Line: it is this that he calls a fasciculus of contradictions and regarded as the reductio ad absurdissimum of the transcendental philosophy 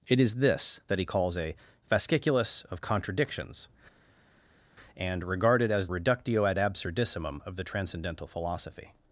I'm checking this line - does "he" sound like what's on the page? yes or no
yes